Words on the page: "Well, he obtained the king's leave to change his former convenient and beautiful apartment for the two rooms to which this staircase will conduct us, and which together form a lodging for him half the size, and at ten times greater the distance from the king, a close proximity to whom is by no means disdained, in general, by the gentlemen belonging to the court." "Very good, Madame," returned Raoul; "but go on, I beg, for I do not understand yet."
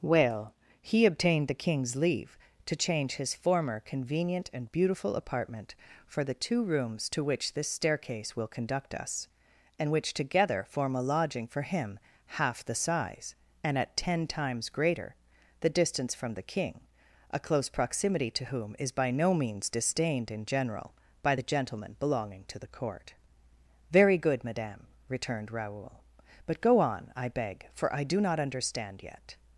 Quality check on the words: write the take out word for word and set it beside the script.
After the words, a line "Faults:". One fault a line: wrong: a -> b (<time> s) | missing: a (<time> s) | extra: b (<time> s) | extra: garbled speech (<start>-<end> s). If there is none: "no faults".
"Well, he obtained the king's leave to change his former convenient and beautiful apartment for the two rooms to which this staircase will conduct us, and which together form a lodging for him half the size, and at ten times greater the distance from the king, a close proximity to whom is by no means disdained, in general, by the gentlemen belonging to the court." "Very good, Madame," returned Raoul; "but go on, I beg, for I do not understand yet."
Faults:
no faults